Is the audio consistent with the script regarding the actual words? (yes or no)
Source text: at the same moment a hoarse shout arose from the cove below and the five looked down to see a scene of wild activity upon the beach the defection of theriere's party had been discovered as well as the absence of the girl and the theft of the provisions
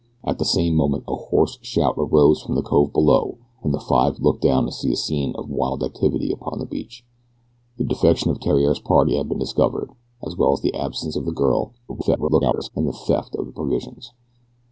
no